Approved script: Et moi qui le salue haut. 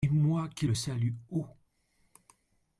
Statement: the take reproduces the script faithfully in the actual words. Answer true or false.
true